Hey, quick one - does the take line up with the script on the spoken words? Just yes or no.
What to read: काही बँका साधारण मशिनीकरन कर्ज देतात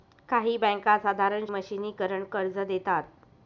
yes